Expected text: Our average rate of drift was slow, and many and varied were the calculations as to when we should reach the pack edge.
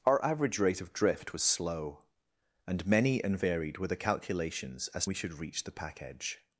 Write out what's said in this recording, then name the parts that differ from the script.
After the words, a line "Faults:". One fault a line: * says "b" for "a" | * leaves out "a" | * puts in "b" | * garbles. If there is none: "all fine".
Our average rate of drift was slow, and many and varied were the calculations as we should reach the pack edge.
Faults:
* leaves out "to when"